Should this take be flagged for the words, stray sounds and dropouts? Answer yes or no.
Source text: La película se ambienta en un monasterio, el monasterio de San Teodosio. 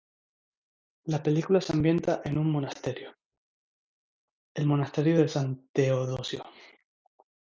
no